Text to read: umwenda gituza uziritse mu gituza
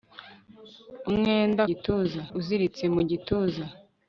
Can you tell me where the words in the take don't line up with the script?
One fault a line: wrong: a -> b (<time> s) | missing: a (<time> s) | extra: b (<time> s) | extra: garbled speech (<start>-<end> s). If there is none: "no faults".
no faults